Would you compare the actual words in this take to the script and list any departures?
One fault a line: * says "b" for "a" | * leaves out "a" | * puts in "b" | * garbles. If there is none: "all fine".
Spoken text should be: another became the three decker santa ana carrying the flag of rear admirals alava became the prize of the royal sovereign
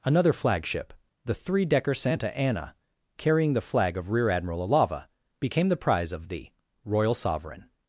* says "flagship" for "became"
* says "admiral" for "admirals"